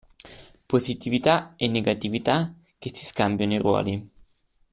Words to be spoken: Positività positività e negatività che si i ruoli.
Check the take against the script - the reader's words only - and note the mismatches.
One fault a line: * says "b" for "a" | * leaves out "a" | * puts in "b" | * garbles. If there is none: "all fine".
* leaves out "positività"
* puts in "scambiano"